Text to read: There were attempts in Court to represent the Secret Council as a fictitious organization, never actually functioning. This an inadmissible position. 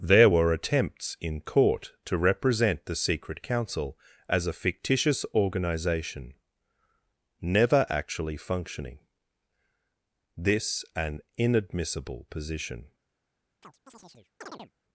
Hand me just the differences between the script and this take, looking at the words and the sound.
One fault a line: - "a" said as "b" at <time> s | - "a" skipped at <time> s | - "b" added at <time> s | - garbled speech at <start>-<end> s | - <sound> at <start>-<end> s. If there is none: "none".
- chirp at 13.6-14.7 s